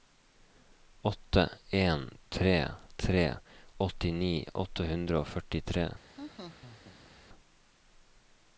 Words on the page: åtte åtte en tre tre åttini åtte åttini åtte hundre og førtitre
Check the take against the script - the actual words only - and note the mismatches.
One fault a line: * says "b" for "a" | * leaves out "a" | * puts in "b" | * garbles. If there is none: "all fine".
* leaves out "åtte"
* leaves out "åttini åtte"